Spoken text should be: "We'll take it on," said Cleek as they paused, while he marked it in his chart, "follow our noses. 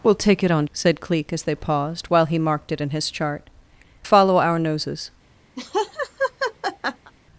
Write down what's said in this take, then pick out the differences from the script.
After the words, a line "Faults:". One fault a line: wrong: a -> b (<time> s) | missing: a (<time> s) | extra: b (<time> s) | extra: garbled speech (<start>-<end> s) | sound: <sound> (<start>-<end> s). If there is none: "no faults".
"We'll take it on," said Cleek as they paused, while he marked it in his chart, "follow our noses.
Faults:
sound: laugh (5.6-7.1 s)